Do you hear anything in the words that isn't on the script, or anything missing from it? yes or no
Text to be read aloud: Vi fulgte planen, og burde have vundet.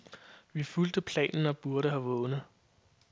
no